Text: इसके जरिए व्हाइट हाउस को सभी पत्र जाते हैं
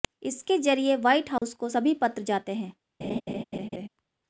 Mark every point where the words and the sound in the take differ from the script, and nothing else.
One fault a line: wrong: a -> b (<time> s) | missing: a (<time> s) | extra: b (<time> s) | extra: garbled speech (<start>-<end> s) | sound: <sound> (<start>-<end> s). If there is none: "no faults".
sound: dropout (1.4-1.4 s)
sound: laugh (3.0-3.9 s)